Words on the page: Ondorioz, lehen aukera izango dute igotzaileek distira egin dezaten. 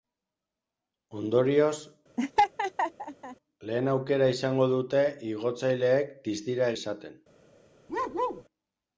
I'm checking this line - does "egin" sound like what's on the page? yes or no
no